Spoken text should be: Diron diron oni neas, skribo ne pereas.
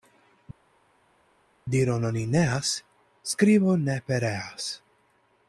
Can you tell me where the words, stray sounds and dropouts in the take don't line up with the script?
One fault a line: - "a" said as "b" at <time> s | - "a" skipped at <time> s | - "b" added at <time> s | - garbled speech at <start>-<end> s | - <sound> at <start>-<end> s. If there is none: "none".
- "diron" skipped at 2.1 s